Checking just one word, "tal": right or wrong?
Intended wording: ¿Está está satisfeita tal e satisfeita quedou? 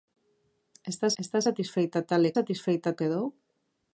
right